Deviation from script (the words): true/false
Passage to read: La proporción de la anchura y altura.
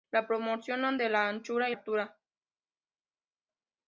false